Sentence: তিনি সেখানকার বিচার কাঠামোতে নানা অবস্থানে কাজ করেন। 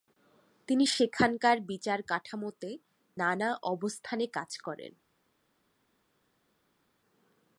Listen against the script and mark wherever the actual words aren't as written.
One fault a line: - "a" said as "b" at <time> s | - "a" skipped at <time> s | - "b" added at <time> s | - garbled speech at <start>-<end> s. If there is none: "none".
none